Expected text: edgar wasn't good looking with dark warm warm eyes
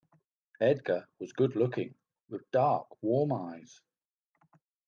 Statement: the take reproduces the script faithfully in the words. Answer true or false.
false